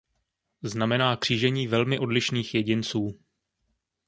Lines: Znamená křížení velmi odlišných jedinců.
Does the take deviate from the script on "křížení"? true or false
false